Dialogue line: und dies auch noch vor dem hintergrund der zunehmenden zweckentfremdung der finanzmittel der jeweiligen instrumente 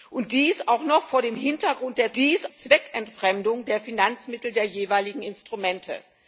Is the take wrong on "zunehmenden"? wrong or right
wrong